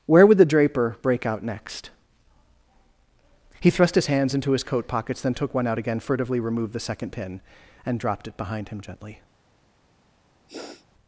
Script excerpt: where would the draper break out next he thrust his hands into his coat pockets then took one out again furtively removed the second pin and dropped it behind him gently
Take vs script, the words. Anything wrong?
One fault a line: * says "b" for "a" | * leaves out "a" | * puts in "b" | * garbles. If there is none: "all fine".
all fine